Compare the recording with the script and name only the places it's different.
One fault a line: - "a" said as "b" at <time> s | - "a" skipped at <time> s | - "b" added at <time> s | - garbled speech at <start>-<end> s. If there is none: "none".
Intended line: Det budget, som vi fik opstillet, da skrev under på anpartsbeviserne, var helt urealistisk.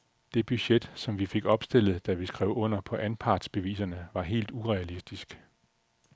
- "vi" added at 2.1 s